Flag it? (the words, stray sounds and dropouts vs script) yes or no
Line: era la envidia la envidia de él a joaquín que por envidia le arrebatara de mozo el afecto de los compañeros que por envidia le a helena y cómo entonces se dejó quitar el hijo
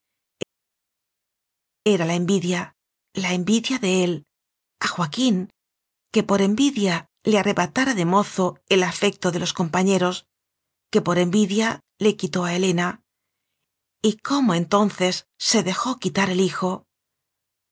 yes